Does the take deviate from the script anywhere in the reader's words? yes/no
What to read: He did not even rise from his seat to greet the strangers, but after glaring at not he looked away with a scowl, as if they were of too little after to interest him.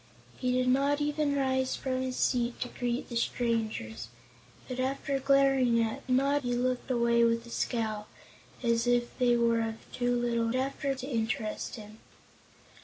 no